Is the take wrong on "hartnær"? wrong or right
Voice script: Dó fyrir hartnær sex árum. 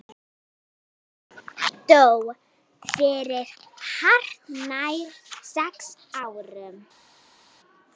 right